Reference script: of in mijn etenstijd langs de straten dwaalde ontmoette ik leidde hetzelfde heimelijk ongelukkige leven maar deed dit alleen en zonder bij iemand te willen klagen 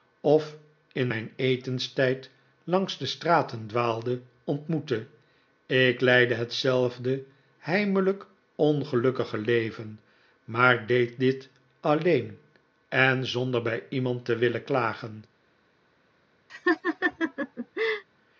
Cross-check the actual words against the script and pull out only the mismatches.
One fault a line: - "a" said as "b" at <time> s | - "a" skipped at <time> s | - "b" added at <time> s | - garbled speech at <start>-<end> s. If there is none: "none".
none